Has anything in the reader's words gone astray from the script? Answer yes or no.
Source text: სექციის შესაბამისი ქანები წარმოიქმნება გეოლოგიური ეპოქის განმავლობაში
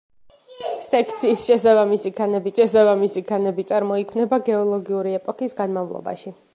yes